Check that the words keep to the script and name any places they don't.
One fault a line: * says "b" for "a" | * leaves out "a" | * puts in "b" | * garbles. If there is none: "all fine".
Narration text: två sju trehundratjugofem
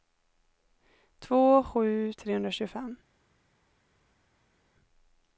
all fine